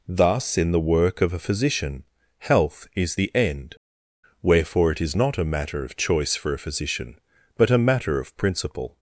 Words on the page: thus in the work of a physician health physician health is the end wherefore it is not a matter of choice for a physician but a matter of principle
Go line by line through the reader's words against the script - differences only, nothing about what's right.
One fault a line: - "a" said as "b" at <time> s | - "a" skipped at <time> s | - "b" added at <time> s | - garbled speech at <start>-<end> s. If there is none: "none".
- "physician health" skipped at 2.9 s